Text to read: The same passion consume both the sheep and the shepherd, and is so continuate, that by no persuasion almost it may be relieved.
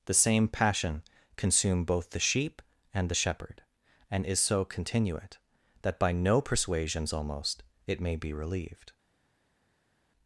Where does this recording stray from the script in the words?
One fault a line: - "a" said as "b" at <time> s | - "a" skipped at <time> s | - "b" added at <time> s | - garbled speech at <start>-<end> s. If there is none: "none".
- "persuasion" said as "persuasions" at 6.4 s